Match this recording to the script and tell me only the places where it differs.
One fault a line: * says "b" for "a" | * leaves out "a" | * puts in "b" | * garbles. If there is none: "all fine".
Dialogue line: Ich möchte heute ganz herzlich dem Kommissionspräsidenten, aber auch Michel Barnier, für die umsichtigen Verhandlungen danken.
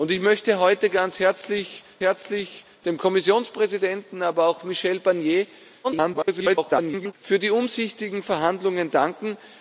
* puts in "herzlich"
* garbles